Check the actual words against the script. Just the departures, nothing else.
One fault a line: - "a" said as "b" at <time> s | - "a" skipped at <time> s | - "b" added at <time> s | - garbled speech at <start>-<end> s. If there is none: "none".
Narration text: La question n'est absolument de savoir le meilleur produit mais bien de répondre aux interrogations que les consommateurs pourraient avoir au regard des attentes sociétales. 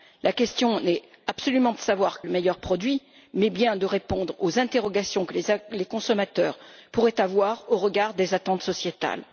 none